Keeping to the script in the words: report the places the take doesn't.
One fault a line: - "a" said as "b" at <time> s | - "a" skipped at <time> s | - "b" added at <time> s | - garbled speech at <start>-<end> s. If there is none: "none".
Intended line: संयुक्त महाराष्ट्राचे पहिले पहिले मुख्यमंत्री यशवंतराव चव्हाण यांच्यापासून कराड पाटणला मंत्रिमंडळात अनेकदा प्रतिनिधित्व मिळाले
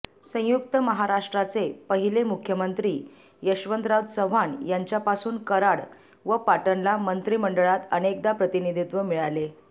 - "पहिले" skipped at 2.2 s
- "व" added at 6.2 s